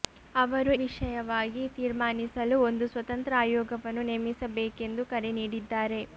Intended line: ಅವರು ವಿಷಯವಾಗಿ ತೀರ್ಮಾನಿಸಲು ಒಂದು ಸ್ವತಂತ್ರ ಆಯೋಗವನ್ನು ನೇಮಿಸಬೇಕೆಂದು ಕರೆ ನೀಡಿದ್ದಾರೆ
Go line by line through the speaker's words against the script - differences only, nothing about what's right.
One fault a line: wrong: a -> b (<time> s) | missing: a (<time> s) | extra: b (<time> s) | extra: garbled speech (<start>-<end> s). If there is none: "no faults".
no faults